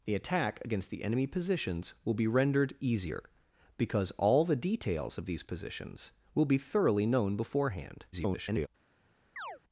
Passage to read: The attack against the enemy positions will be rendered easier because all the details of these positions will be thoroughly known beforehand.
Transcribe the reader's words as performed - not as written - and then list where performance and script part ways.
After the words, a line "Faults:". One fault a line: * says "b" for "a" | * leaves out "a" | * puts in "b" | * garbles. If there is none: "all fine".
The attack against the enemy positions will be rendered easier because all the details of these positions will be thoroughly known beforehand. [garbled]
Faults:
* garbles